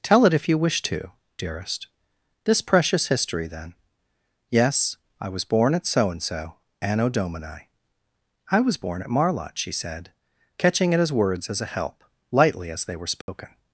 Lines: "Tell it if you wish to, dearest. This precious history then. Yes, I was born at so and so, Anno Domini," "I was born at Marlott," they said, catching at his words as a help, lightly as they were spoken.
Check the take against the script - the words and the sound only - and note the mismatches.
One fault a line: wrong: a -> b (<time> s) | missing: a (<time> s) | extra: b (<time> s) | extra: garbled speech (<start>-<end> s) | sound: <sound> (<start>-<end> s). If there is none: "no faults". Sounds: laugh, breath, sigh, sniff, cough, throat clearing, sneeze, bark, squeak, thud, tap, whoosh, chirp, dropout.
wrong: they -> she (9.6 s)
sound: dropout (13.2-13.3 s)